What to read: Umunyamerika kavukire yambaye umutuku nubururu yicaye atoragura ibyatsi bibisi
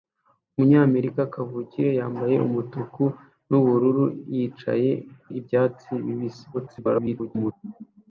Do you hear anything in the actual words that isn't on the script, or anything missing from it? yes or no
yes